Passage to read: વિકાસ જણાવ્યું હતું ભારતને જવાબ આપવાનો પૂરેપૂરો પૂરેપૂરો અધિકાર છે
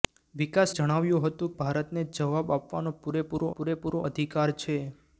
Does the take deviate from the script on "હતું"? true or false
false